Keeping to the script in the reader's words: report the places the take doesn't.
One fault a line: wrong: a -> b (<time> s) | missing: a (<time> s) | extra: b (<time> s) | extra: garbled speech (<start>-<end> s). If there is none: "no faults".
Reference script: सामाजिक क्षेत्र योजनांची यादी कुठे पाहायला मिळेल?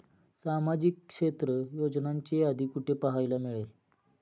no faults